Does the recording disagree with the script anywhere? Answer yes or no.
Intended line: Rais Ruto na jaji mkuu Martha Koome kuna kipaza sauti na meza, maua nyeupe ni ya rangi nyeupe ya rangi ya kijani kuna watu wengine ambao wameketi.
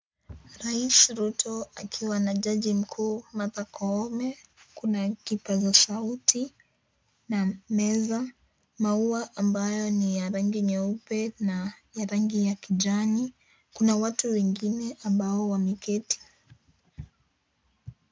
yes